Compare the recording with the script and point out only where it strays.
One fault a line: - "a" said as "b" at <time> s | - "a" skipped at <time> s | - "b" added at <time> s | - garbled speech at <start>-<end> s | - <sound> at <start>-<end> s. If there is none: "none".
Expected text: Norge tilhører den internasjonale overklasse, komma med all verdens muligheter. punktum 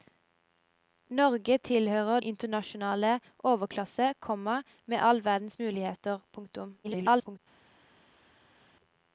- "den" skipped at 2.2 s
- garbled speech at 6.8-7.4 s